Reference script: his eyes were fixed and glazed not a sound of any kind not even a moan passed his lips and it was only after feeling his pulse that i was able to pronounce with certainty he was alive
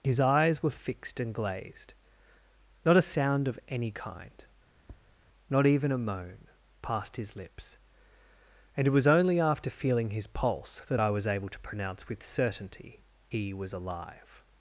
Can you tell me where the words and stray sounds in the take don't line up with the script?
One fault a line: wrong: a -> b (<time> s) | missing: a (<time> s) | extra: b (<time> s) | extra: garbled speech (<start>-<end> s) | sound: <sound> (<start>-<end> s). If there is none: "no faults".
sound: tap (4.8-5.2 s)